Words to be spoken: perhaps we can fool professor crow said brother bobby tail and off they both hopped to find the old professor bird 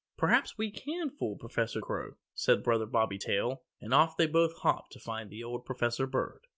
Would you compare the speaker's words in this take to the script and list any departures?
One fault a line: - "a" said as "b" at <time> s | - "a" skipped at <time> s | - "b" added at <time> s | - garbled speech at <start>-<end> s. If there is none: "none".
none